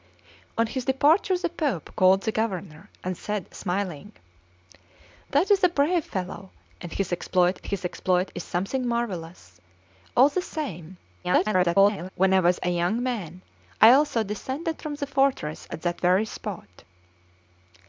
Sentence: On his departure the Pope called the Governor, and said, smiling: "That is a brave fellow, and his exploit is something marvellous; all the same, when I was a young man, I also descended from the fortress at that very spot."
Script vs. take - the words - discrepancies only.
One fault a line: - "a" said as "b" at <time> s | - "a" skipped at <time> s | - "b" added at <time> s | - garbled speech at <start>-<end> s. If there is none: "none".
- "his exploit" added at 7.7 s
- garbled speech at 11.2-12.1 s